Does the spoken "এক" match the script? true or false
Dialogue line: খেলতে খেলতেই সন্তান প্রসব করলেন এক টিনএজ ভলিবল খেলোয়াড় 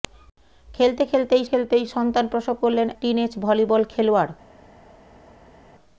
false